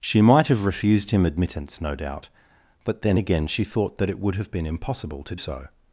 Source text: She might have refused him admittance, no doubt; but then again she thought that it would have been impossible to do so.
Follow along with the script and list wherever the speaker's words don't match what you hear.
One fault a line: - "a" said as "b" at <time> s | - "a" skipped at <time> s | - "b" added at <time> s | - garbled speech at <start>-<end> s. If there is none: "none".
- "do" skipped at 5.3 s